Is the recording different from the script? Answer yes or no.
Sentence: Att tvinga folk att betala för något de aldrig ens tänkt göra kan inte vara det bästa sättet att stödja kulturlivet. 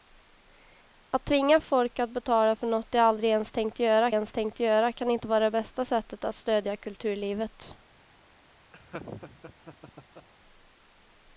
yes